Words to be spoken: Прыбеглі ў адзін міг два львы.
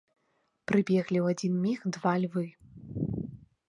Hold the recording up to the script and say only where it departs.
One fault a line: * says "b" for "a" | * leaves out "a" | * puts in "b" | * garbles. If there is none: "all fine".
all fine